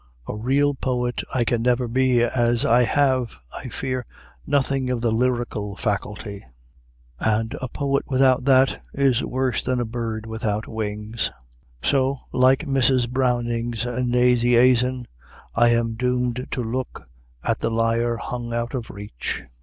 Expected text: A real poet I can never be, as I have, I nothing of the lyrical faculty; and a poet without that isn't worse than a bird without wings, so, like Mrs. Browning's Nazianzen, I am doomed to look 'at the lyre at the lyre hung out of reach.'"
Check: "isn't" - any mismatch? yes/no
yes